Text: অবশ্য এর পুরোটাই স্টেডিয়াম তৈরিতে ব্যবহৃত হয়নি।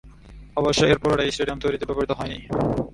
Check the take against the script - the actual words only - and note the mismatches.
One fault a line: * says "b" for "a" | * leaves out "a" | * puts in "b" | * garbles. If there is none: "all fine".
all fine